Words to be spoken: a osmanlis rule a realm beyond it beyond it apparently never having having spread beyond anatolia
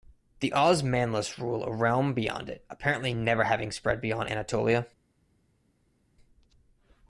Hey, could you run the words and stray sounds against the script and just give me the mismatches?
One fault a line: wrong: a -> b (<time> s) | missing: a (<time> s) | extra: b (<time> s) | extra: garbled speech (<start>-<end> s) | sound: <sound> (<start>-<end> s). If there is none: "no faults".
wrong: a -> the (0.4 s)
missing: beyond it (2.6 s)
missing: having (3.7 s)